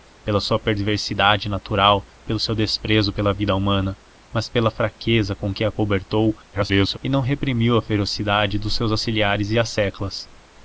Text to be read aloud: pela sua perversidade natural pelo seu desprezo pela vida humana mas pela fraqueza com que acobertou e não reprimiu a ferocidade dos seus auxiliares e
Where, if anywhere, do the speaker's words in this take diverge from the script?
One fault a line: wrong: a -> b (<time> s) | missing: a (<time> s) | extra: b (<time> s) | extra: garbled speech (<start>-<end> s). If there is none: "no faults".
extra: garbled speech (6.5-7.0 s)